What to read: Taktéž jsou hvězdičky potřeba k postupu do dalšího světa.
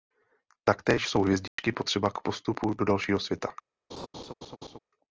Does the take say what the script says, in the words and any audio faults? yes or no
no